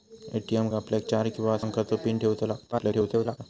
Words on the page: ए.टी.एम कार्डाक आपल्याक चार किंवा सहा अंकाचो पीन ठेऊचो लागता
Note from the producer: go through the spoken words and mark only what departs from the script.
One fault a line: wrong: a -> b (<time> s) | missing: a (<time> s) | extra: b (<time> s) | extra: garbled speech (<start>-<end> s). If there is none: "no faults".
missing: कार्डाक (0.7 s)
missing: सहा (1.6 s)
extra: garbled speech (2.7-3.4 s)